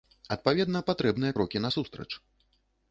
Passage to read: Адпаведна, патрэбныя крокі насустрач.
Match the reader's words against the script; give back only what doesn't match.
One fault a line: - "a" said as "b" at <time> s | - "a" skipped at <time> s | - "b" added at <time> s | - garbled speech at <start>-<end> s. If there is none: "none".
none